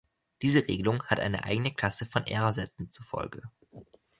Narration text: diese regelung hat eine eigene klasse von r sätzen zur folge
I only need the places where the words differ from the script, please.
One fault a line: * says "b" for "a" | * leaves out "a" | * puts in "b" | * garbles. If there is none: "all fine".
all fine